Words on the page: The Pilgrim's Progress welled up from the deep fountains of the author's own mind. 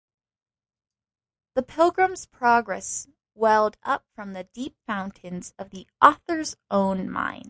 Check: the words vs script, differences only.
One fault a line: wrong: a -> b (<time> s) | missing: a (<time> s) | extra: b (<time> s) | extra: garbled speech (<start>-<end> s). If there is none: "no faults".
no faults